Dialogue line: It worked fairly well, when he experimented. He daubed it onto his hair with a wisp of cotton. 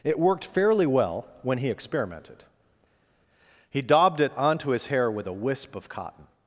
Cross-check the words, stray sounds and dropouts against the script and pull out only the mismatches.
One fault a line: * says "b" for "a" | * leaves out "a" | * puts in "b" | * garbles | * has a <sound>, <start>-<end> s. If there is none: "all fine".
all fine